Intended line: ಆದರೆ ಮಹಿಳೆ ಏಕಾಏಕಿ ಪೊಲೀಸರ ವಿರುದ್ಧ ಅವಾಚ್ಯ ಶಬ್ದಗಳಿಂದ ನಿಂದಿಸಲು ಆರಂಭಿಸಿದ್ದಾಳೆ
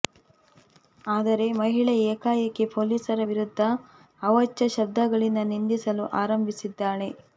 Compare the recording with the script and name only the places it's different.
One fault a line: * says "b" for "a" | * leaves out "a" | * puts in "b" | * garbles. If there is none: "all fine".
all fine